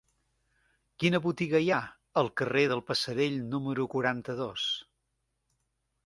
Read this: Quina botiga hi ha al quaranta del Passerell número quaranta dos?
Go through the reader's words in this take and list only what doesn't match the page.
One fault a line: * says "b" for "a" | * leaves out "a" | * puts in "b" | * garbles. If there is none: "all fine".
* says "carrer" for "quaranta"